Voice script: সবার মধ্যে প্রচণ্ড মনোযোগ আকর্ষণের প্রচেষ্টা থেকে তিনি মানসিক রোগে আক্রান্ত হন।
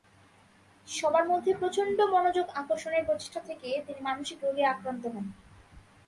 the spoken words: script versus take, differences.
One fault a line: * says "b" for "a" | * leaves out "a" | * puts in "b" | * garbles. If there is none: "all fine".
all fine